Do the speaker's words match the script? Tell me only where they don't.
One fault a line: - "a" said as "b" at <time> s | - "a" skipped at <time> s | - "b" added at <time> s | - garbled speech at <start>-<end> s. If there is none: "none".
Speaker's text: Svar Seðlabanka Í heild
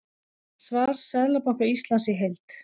- "Íslands" added at 1.7 s